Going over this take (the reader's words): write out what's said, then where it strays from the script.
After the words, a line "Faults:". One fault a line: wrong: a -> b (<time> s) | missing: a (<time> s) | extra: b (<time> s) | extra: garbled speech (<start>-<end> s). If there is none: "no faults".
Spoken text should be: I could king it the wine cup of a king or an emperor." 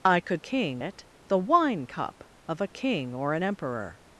I could king it the wine cup of a king or an emperor."
Faults:
no faults